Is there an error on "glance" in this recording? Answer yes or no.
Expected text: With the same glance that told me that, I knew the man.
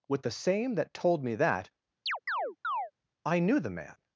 yes